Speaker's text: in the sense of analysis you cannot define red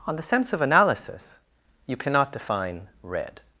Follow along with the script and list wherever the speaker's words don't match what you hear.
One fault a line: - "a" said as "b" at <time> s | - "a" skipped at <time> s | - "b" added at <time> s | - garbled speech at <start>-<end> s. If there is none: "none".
- "in" said as "on" at 0.1 s